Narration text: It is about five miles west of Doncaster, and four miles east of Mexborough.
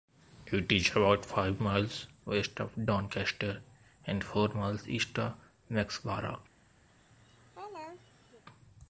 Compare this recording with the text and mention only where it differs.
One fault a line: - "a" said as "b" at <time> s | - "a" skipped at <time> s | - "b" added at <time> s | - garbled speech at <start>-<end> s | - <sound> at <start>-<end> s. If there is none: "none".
- laugh at 6.9-8.4 s